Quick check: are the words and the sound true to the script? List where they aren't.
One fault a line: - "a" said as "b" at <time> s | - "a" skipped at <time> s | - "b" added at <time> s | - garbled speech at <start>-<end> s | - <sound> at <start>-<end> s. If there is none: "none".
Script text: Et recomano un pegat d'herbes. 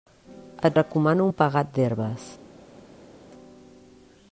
none